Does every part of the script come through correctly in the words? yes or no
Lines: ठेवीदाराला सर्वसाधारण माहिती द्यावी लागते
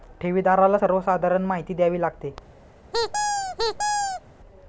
yes